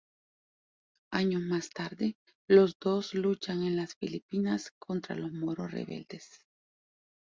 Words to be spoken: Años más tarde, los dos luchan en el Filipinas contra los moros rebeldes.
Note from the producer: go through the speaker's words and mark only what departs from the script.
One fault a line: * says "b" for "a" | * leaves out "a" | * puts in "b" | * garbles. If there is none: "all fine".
* says "las" for "el"